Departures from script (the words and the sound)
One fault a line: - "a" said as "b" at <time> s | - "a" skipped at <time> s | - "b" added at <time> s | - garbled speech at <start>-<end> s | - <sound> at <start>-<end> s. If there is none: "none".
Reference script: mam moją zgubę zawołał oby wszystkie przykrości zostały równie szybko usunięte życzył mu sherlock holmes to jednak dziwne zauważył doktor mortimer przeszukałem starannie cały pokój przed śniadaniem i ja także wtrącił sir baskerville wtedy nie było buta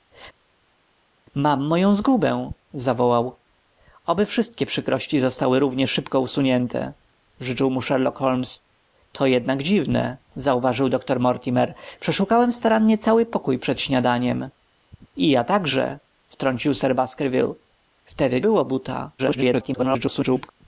- "nie" skipped at 18.4 s
- garbled speech at 19.2-20.5 s